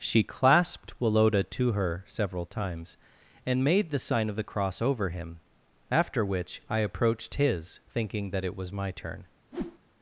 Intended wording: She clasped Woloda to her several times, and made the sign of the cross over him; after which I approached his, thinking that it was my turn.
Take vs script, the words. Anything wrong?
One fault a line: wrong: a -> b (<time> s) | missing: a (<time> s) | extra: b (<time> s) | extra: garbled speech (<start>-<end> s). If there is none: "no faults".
no faults